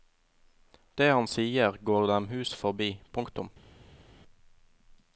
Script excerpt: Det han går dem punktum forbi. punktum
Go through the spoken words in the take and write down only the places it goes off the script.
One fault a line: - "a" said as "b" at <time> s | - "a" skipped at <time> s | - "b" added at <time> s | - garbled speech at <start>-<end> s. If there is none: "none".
- "sier" added at 1.3 s
- "punktum" said as "hus" at 2.3 s